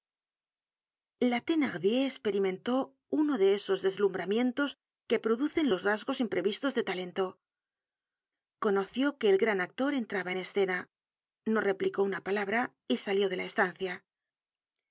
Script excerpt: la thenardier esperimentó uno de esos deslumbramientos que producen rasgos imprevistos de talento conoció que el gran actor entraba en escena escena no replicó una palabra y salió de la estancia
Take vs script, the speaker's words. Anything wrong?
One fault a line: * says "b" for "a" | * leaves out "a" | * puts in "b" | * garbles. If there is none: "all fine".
* puts in "los"
* leaves out "escena"